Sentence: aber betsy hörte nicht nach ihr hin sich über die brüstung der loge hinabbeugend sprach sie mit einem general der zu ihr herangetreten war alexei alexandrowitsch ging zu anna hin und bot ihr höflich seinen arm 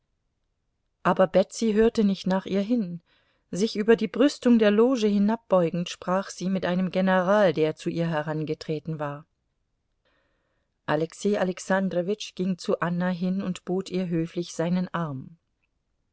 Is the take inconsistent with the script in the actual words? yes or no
no